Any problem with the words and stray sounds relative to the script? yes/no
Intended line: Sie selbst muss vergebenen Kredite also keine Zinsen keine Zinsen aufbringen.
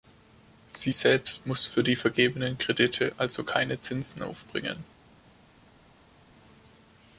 yes